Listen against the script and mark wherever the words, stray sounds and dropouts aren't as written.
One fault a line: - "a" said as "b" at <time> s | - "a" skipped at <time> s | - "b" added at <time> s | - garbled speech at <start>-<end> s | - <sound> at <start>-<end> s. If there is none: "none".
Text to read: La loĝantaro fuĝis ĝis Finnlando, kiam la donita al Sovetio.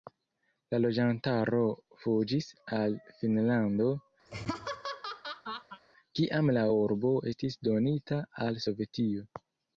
- "ĝis" said as "al" at 2.8 s
- laugh at 4.3-5.8 s
- "urbo estis" added at 6.8 s